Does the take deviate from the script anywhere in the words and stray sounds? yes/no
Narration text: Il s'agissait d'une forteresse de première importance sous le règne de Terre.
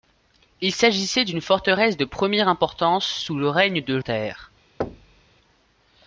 yes